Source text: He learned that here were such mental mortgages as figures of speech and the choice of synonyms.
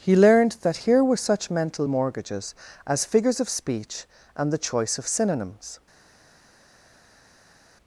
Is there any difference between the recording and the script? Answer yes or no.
no